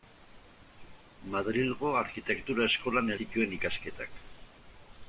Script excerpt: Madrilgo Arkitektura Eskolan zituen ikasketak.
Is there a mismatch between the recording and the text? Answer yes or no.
no